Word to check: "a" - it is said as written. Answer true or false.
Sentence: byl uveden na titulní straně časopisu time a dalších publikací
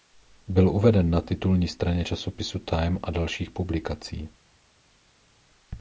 true